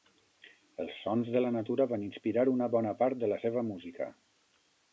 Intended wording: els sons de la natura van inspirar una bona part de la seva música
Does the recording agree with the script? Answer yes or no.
yes